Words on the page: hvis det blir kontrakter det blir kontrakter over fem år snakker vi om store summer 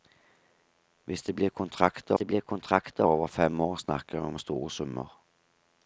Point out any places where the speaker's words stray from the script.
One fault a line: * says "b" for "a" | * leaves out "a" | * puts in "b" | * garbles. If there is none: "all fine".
all fine